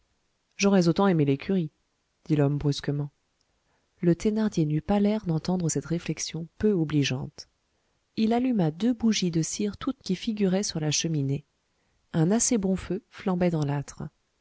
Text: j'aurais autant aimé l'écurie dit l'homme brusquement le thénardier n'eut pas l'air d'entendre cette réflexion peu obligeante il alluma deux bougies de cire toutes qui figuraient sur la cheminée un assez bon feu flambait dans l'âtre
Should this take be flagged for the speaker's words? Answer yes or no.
no